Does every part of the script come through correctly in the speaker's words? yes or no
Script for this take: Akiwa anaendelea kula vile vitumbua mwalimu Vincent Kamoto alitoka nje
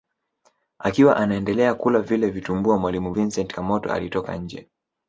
yes